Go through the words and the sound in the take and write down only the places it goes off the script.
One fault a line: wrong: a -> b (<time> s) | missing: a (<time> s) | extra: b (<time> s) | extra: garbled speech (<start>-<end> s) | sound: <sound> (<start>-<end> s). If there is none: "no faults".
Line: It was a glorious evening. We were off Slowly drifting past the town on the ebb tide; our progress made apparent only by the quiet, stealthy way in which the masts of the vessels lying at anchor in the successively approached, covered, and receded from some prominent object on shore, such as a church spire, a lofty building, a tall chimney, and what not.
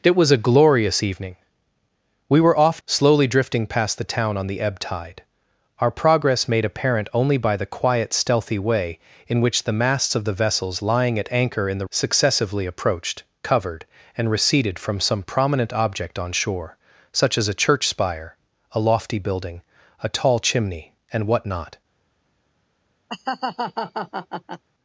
sound: laugh (23.1-24.6 s)